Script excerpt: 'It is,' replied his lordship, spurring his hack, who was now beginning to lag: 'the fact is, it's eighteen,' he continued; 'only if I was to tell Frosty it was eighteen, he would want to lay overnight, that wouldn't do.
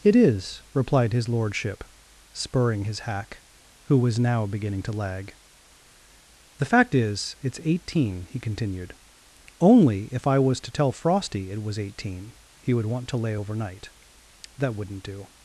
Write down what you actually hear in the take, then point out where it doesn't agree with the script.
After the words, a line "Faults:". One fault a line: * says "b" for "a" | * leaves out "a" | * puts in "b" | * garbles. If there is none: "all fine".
'It is,' replied his lordship, spurring his hack, who was now beginning to lag: 'the fact is, it's eighteen,' he continued; 'only if I was to tell Frosty it was eighteen, he would want to lay overnight, that wouldn't do.
Faults:
all fine